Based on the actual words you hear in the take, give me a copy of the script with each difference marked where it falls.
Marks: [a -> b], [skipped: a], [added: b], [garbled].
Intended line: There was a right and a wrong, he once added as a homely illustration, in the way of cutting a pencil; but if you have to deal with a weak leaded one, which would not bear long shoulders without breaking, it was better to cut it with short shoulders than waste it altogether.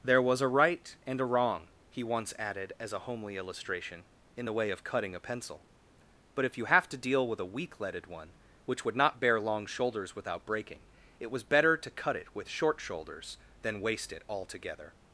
There was a right and a wrong, he once added as a homely illustration, in the way of cutting a pencil; but if you have to deal with a weak leaded one, which would not bear long shoulders without breaking, it was better to cut it with short shoulders than waste it altogether.